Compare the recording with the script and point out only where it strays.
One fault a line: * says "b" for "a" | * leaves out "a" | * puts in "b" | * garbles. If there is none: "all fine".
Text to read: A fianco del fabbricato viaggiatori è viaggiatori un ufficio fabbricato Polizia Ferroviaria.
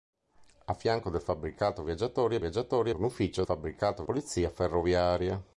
all fine